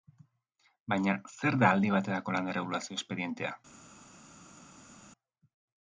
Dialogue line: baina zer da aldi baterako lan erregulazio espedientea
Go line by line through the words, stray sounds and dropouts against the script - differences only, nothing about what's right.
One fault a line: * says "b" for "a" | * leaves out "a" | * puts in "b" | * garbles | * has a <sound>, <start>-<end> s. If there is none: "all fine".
all fine